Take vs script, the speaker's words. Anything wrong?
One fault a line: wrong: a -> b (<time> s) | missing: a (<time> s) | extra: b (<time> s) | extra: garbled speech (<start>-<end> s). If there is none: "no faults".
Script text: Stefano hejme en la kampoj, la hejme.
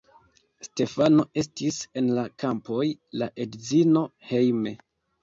wrong: hejme -> estis (1.4 s)
extra: edzino (3.5 s)